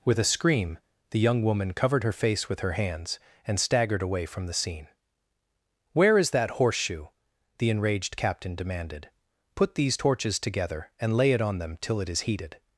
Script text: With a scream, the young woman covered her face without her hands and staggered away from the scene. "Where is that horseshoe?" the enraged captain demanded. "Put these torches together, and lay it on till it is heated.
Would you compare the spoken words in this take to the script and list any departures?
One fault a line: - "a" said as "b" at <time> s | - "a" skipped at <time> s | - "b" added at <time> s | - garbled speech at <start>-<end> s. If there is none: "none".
- "without" said as "with" at 2.5 s
- "them" added at 11.6 s